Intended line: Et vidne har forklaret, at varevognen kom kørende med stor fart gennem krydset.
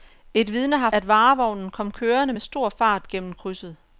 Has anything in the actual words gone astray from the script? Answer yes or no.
yes